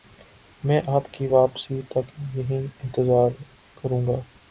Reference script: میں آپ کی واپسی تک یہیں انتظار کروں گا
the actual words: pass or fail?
pass